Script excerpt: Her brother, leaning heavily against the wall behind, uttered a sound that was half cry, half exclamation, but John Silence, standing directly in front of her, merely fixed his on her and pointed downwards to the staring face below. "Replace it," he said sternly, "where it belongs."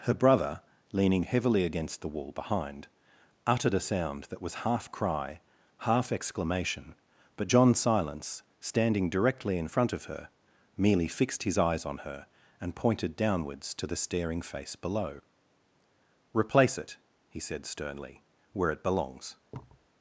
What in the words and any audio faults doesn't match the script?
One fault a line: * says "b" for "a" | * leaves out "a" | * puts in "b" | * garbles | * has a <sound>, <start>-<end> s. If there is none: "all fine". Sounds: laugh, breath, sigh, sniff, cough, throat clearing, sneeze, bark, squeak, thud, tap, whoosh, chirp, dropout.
* puts in "eyes"
* has a thud, 19.5-19.9 s